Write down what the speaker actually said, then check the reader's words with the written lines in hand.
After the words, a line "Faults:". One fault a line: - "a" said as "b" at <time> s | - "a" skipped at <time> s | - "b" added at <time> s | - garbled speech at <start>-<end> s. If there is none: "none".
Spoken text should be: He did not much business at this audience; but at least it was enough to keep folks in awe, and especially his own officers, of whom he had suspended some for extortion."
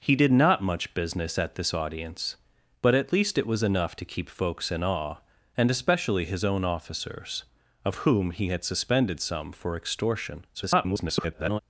He did not much business at this audience; but at least it was enough to keep folks in awe, and especially his own officers, of whom he had suspended some for extortion." [garbled]
Faults:
- garbled speech at 10.5-11.6 s